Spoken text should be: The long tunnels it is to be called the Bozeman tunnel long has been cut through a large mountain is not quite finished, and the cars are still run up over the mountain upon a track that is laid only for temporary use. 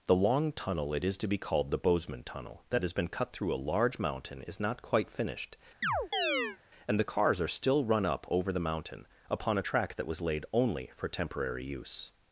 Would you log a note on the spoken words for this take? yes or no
yes